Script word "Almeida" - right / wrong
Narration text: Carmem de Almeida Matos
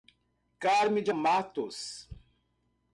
wrong